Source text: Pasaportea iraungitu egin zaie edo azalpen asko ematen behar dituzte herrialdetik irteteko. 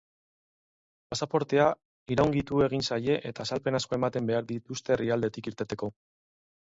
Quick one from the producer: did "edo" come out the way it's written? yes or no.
no